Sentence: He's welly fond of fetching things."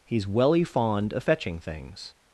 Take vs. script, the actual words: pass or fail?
pass